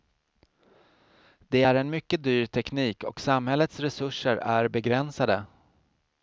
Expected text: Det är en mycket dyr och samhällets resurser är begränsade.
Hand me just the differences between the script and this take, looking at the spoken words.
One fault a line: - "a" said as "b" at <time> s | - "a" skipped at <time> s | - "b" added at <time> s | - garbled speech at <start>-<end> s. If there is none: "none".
- "teknik" added at 2.4 s